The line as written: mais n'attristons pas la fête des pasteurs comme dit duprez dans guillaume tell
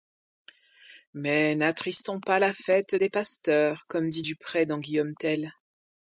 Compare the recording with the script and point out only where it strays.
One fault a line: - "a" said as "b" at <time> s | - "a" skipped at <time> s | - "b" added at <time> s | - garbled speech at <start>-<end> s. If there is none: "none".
none